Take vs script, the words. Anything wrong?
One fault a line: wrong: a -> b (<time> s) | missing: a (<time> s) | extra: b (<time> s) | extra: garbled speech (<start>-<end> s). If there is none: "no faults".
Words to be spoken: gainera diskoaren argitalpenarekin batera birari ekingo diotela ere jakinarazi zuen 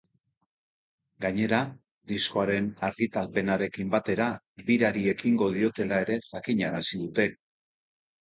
wrong: zuen -> dute (7.1 s)